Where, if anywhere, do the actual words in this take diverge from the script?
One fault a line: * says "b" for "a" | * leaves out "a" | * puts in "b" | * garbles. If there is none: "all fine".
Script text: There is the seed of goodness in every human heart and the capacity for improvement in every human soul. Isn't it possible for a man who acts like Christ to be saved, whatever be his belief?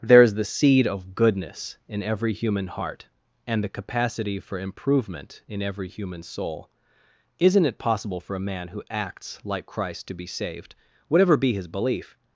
all fine